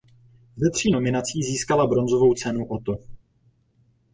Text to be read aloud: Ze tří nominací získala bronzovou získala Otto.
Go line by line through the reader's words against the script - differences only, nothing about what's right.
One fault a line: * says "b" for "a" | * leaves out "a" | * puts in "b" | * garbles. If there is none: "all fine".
* says "cenu" for "získala"